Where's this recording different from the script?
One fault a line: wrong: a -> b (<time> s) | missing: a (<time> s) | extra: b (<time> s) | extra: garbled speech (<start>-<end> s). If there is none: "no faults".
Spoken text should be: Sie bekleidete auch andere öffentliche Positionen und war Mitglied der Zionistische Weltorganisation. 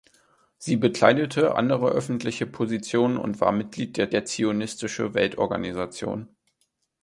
missing: auch (1.6 s)
extra: der (4.1 s)